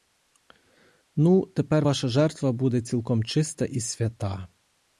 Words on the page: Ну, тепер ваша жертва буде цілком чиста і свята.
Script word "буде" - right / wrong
right